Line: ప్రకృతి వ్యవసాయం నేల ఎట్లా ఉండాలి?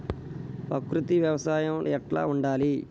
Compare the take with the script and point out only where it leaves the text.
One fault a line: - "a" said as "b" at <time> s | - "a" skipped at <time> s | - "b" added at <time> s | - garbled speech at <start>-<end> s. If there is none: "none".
- "నేల" skipped at 1.9 s